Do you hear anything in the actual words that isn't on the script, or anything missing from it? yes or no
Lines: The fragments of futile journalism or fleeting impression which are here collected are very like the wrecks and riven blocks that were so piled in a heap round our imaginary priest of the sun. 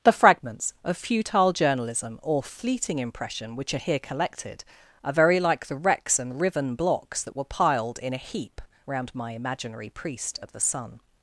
yes